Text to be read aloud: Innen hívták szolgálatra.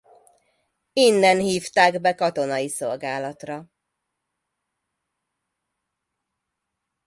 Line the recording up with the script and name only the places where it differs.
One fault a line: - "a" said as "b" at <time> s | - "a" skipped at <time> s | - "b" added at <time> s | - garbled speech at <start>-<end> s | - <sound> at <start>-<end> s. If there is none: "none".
- "be katonai" added at 2.0 s